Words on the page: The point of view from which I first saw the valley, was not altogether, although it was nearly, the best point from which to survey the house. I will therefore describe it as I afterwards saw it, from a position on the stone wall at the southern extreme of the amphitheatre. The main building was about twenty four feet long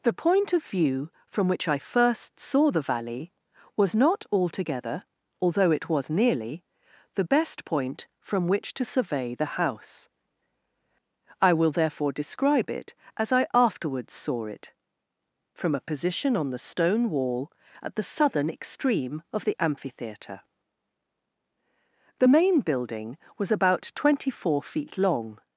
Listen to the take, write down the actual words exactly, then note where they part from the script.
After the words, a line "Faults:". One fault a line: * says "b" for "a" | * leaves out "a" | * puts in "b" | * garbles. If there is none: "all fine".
The point of view from which I first saw the valley, was not altogether, although it was nearly, the best point from which to survey the house. I will therefore describe it as I afterwards saw it, from a position on the stone wall at the southern extreme of the amphitheatre. The main building was about twenty four feet long
Faults:
all fine